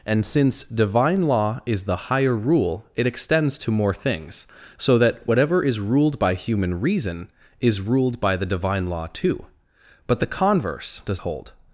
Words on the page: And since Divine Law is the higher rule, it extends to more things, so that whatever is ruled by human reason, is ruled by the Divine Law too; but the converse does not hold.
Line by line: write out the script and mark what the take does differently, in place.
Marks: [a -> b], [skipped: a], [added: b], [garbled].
And since Divine Law is the higher rule, it extends to more things, so that whatever is ruled by human reason, is ruled by the Divine Law too; but the converse does [skipped: not] hold.